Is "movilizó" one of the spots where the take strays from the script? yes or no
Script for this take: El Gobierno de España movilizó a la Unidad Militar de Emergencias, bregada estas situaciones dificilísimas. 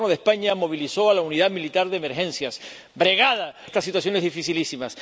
no